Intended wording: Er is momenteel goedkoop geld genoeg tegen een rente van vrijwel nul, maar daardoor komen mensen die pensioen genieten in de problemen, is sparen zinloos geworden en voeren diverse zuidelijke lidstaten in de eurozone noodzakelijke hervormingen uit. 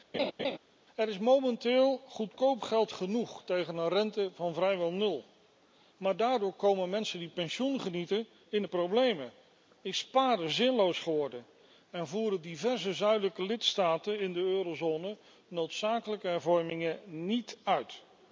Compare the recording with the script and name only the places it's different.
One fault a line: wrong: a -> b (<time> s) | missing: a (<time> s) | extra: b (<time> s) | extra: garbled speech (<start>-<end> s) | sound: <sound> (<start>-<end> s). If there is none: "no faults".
sound: laugh (0.1-0.6 s)
extra: niet (17.0 s)